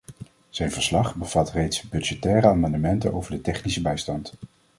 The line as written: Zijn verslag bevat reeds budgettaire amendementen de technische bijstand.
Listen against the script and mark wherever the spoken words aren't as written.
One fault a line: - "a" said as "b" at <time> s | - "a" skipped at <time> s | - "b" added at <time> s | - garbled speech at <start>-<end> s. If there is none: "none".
- "over" added at 3.1 s